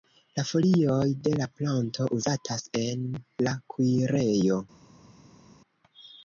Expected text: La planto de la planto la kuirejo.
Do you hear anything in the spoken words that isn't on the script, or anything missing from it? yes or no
yes